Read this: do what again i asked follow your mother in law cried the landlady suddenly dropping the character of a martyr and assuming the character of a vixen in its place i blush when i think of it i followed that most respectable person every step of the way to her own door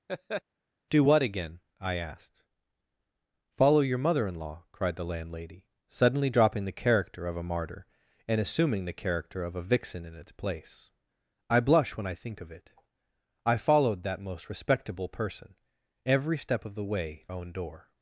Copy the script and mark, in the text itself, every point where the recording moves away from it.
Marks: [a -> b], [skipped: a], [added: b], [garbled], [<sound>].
[laugh] do what again i asked follow your mother in law cried the landlady suddenly dropping the character of a martyr and assuming the character of a vixen in its place i blush when i think of it i followed that most respectable person every step of the way [skipped: to her] own door